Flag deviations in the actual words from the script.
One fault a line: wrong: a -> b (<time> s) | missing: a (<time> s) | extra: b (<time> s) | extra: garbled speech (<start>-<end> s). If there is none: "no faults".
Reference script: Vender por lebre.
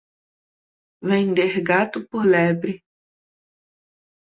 extra: gato (1.6 s)